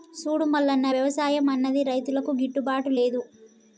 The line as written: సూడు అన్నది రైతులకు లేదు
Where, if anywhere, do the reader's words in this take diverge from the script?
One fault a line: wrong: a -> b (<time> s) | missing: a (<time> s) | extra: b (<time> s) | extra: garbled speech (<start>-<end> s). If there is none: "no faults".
extra: మల్లన్న వ్యవసాయం (0.5 s)
extra: గిట్టుబాటు (2.4 s)